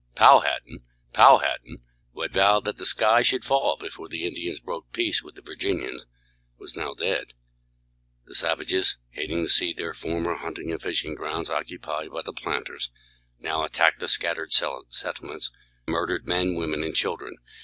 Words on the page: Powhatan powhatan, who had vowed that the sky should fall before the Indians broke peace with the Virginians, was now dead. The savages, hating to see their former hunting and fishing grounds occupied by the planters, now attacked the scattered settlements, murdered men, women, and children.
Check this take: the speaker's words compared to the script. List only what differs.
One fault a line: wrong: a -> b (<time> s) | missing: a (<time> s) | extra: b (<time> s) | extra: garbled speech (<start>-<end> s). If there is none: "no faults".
no faults